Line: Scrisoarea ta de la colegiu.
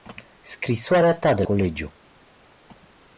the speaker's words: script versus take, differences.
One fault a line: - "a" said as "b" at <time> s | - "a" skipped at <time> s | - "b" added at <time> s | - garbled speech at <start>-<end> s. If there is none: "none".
- "la" skipped at 1.4 s